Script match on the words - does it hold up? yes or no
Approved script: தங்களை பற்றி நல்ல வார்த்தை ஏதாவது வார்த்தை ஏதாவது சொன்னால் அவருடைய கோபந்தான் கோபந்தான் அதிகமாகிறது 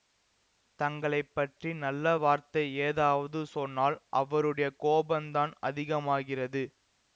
no